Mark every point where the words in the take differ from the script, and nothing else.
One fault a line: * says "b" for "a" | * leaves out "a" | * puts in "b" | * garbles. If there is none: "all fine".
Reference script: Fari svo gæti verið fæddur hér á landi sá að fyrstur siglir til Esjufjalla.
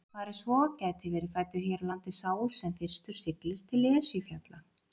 * says "sem" for "að"